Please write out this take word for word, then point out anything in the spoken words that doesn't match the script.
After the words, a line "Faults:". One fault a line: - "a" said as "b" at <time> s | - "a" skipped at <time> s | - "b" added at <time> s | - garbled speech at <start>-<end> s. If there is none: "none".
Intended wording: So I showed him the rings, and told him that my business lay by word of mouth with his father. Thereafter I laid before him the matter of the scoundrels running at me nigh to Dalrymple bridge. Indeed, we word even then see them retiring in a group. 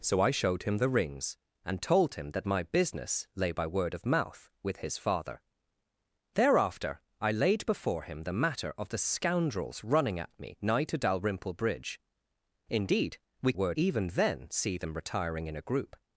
So I showed him the rings, and told him that my business lay by word of mouth with his father. Thereafter I laid before him the matter of the scoundrels running at me nigh to Dalrymple bridge. Indeed, we word even then see them retiring in a group.
Faults:
none